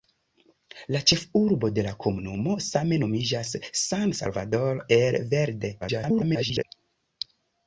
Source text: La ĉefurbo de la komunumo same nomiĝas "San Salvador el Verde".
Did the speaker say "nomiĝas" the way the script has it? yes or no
yes